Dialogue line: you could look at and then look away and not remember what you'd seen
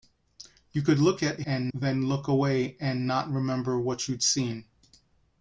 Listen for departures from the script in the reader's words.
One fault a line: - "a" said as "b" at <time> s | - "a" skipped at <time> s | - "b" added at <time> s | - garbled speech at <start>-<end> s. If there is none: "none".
none